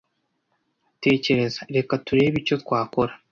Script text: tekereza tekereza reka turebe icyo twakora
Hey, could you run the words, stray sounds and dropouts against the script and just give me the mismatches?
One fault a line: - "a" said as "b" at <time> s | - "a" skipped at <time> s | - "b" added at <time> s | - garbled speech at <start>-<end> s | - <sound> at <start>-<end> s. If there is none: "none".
- "tekereza" skipped at 1.6 s